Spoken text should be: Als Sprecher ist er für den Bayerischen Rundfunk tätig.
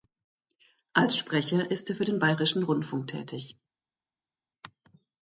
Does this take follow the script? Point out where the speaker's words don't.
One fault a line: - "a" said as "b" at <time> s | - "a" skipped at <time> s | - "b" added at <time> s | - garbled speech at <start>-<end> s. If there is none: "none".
none